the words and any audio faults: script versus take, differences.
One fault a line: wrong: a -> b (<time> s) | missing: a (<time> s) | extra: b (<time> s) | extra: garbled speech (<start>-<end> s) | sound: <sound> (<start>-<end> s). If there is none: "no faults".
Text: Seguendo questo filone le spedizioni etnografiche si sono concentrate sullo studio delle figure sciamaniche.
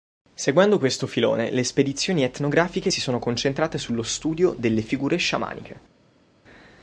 no faults